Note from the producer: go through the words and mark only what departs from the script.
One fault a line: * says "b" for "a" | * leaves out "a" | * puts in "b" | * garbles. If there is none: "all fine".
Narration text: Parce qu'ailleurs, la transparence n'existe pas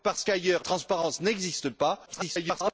* leaves out "la"
* garbles